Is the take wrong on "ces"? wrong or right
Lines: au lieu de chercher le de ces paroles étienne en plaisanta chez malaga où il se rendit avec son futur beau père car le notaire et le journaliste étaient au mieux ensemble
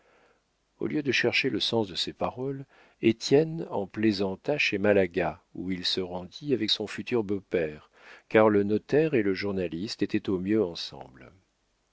right